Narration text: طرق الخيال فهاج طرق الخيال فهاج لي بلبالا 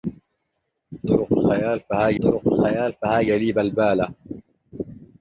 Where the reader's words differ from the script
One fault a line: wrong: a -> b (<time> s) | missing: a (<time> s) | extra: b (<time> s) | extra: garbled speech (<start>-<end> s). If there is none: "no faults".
no faults